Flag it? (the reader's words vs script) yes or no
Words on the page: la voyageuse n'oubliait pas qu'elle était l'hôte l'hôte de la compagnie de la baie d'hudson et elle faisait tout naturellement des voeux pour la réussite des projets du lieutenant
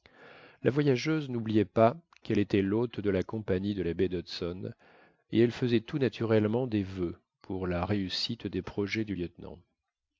yes